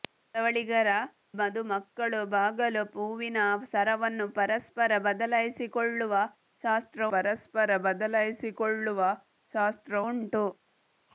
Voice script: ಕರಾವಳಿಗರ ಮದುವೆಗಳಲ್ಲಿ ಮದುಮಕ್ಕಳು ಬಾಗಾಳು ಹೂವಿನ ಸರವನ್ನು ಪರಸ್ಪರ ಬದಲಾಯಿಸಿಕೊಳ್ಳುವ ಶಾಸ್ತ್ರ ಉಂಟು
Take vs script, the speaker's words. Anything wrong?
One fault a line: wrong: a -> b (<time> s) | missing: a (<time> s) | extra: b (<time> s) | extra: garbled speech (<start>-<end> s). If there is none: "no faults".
missing: ಮದುವೆಗಳಲ್ಲಿ (0.9 s)
extra: ಪರಸ್ಪರ ಬದಲಾಯಿಸಿಕೊಳ್ಳುವ ಶಾಸ್ತ್ರ (7.1 s)